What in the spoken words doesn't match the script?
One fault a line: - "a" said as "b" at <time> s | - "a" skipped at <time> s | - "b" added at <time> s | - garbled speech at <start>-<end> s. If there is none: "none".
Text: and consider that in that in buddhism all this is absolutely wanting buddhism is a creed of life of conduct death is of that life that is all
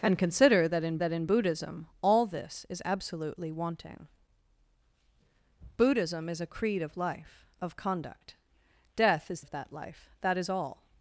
none